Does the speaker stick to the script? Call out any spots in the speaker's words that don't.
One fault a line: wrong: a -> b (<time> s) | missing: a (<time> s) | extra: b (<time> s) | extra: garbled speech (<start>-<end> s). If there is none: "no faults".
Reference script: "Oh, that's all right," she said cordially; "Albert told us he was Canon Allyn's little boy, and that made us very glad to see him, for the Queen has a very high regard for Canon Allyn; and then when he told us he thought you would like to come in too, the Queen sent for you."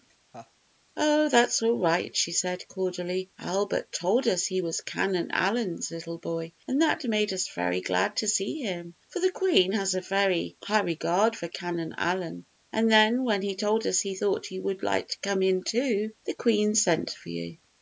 no faults